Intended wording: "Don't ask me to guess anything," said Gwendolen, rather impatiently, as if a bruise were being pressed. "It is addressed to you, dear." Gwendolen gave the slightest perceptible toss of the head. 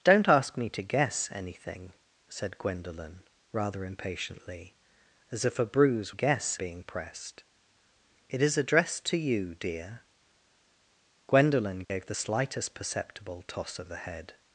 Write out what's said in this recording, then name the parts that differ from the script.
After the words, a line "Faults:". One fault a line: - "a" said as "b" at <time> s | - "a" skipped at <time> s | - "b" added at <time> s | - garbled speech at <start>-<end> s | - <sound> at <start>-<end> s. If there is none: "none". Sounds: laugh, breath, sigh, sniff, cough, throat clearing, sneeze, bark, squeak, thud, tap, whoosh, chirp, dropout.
"Don't ask me to guess anything," said Gwendolen, rather impatiently, as if a bruise guess being pressed. "It is addressed to you, dear." Gwendolen gave the slightest perceptible toss of the head.
Faults:
- "were" said as "guess" at 6.1 s
- dropout at 11.8-11.9 s